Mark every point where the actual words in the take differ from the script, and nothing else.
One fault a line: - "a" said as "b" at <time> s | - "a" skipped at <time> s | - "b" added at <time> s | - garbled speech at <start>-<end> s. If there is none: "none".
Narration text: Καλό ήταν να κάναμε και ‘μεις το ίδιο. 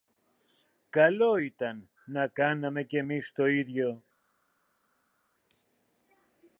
none